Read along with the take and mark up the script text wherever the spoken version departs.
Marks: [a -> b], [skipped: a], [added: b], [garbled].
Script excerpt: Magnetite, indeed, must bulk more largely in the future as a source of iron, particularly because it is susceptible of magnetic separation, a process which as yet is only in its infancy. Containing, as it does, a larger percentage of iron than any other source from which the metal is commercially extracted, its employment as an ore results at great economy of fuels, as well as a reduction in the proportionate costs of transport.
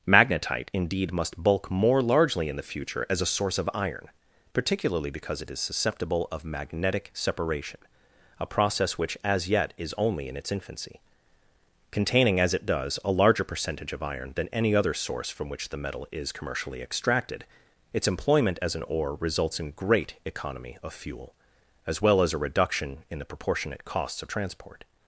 Magnetite, indeed, must bulk more largely in the future as a source of iron, particularly because it is susceptible of magnetic separation, a process which as yet is only in its infancy. Containing, as it does, a larger percentage of iron than any other source from which the metal is commercially extracted, its employment as an ore results [at -> in] great economy of [fuels, -> fuel] as well as a reduction in the proportionate costs of transport.